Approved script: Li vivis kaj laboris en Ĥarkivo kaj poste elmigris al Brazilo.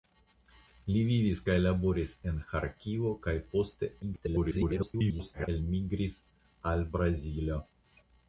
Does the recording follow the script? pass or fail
fail